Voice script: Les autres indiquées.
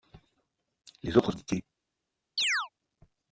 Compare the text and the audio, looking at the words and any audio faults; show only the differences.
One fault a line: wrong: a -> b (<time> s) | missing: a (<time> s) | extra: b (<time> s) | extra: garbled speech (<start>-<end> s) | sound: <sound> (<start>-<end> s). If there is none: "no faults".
sound: chirp (2.4-2.7 s)